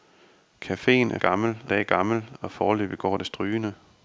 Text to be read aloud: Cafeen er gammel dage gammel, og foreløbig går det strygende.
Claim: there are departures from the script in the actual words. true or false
false